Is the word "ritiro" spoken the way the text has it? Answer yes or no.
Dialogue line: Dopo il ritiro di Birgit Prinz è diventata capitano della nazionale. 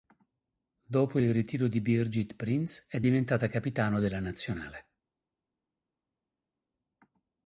yes